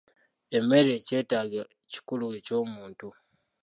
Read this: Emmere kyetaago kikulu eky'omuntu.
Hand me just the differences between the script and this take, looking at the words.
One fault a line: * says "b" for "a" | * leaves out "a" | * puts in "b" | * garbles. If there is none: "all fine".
all fine